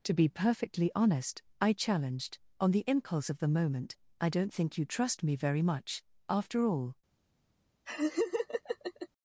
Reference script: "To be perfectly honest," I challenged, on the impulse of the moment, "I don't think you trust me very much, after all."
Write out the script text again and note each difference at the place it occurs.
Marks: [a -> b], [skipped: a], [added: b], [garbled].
"To be perfectly honest," I challenged, on the impulse of the moment, "I don't think you trust me very much, after all."